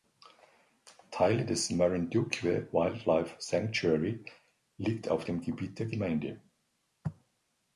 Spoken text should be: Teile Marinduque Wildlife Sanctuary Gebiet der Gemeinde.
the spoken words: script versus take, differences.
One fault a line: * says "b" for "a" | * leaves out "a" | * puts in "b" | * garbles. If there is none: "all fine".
* puts in "des"
* puts in "liegt auf dem"